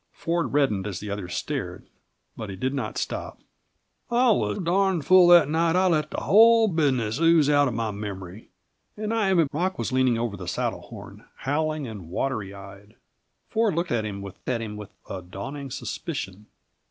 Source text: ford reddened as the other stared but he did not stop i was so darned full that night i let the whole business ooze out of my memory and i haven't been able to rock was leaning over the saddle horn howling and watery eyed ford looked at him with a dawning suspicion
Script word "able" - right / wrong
wrong